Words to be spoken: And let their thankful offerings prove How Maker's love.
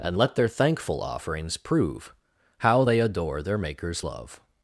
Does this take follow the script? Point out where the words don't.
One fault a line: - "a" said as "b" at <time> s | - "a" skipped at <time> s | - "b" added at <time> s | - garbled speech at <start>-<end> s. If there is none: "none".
- "they adore their" added at 2.8 s